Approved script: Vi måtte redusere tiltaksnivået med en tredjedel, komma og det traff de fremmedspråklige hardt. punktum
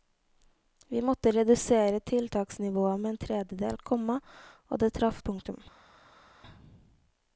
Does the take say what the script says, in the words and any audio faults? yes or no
no